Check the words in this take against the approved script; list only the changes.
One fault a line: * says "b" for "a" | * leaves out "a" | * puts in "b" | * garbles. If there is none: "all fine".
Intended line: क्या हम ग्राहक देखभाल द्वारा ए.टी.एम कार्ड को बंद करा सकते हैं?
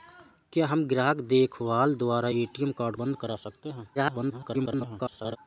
* leaves out "को"
* garbles